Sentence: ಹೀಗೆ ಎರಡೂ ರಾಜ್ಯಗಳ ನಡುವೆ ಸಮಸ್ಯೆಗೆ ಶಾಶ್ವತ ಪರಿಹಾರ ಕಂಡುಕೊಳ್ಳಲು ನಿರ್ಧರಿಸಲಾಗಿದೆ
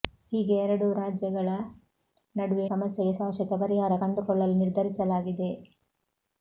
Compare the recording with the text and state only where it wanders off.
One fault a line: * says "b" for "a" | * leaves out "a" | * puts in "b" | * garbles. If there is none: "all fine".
all fine